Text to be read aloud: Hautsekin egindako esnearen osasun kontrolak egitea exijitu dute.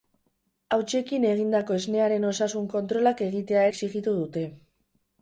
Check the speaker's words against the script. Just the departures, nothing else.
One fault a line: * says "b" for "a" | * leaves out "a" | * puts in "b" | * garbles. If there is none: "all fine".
all fine